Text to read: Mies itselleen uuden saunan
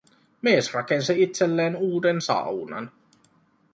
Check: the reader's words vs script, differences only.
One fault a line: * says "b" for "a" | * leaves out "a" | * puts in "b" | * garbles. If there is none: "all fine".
* puts in "rakensi"